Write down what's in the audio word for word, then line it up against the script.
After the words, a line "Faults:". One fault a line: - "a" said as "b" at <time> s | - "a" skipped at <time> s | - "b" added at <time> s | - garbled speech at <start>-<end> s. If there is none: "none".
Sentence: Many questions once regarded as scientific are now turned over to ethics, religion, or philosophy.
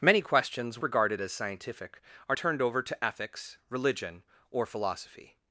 Many questions regarded as scientific are turned over to ethics, religion, or philosophy.
Faults:
- "once" skipped at 0.8 s
- "now" skipped at 2.4 s